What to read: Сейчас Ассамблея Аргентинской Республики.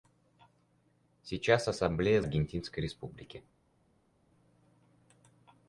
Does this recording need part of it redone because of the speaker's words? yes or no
no